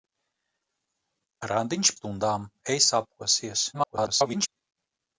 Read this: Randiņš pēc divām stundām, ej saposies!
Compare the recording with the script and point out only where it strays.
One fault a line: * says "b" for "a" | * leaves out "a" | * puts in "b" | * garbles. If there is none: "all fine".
* leaves out "pēc divām"
* garbles